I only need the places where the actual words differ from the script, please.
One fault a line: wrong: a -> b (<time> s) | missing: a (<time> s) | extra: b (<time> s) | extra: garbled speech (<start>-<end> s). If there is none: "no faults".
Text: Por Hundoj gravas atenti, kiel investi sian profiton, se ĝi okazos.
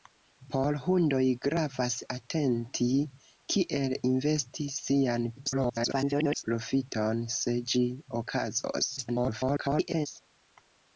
extra: garbled speech (5.4-6.4 s)
extra: garbled speech (9.0-10.1 s)